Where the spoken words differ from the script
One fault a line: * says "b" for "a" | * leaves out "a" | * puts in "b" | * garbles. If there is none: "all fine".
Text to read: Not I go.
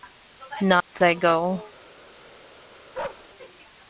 all fine